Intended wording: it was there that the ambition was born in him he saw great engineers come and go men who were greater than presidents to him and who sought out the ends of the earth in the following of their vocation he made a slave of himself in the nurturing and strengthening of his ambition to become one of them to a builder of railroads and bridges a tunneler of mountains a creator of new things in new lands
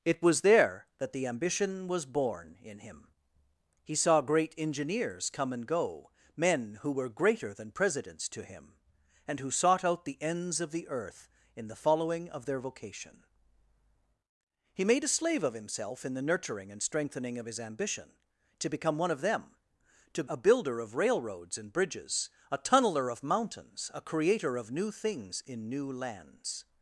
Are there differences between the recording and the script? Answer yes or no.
no